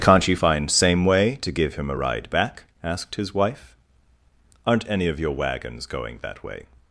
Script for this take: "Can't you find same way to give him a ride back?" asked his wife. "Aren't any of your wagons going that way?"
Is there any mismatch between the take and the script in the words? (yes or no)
no